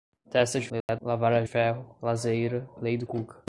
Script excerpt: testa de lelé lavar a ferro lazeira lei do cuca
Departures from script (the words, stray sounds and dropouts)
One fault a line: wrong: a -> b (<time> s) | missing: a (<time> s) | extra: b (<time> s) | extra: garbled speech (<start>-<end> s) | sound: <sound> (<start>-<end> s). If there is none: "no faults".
sound: dropout (0.8-0.9 s)